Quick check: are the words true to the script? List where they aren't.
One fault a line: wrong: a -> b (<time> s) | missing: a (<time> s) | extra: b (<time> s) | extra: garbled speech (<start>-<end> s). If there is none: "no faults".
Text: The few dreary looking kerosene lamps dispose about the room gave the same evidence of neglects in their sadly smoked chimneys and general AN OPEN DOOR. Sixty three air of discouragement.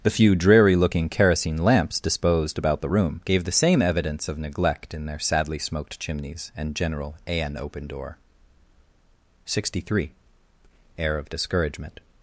wrong: dispose -> disposed (2.0 s)
wrong: neglects -> neglect (4.4 s)